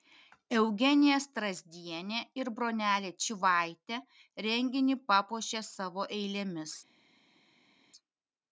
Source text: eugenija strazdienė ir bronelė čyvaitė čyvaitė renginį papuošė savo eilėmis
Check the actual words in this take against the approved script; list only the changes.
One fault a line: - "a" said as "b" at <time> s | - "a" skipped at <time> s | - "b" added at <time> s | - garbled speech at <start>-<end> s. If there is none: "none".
- "čyvaitė" skipped at 4.0 s